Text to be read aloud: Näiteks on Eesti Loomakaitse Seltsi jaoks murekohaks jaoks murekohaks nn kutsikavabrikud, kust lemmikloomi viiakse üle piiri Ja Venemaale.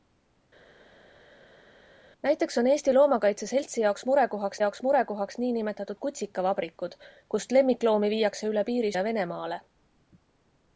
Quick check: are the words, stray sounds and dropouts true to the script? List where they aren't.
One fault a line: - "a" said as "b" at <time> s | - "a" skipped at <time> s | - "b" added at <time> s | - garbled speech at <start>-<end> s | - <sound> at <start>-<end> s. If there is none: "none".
none